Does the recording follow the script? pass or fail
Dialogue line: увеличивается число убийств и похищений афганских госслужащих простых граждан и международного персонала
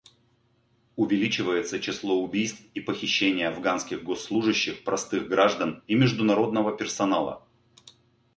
pass